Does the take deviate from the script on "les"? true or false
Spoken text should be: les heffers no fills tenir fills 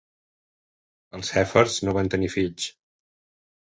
true